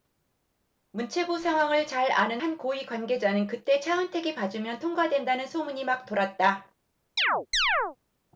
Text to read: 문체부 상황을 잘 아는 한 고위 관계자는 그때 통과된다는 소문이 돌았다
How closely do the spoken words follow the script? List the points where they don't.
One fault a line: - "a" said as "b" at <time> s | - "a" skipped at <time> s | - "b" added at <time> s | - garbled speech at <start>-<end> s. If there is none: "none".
- "차은택이 봐주면" added at 3.8 s
- "막" added at 5.9 s